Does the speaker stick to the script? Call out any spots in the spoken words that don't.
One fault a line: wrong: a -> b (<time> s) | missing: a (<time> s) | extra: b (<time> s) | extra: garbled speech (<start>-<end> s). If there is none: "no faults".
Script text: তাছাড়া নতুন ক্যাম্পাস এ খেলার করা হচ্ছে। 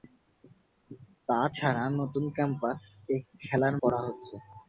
no faults